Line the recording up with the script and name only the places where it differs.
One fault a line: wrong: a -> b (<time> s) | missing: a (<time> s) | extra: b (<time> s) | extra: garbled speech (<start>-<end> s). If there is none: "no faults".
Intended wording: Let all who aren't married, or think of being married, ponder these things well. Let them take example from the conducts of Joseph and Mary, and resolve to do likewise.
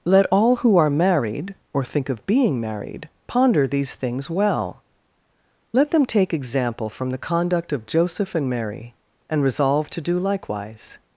wrong: aren't -> are (0.8 s)
wrong: conducts -> conduct (7.2 s)